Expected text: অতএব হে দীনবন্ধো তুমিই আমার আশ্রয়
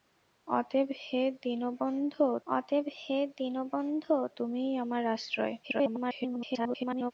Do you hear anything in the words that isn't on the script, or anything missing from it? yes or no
yes